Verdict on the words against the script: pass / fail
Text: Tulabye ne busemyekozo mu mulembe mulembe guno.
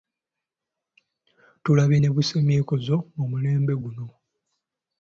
fail